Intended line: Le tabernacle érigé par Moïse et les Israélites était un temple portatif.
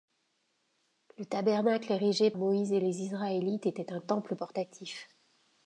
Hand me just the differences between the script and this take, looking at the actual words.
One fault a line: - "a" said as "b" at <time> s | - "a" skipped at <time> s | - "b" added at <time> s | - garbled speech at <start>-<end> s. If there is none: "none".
- "par" skipped at 2.3 s